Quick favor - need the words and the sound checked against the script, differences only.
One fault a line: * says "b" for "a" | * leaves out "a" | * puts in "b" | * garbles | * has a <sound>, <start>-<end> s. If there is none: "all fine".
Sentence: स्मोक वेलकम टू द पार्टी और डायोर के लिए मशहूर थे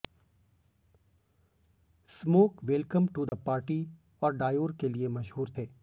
* has a dropout, 3.3-3.3 s